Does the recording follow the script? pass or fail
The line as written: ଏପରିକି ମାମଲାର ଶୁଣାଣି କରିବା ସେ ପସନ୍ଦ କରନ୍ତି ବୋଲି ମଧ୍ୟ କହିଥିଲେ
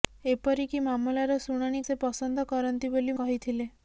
fail